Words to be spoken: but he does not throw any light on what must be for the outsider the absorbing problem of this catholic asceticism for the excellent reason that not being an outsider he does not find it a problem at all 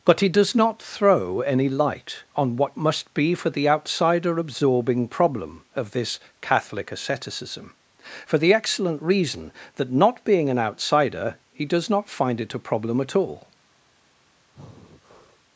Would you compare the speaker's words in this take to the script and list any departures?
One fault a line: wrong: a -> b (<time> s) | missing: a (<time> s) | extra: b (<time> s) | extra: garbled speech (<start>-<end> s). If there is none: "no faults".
missing: the (4.4 s)